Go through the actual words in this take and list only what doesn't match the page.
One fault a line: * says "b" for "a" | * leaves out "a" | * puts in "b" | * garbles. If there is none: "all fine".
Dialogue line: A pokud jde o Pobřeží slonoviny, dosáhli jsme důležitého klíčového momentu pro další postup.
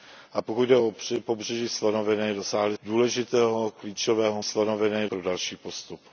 * leaves out "jsme"
* says "slonoviny" for "momentu"